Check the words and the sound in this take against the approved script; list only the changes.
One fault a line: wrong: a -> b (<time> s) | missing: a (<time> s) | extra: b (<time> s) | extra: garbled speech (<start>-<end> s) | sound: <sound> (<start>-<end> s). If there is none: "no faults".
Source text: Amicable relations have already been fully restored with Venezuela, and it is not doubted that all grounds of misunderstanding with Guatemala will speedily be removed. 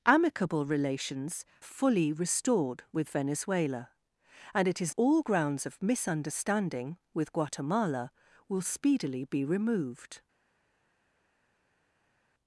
missing: have already been (1.4 s)
missing: not doubted that (4.9 s)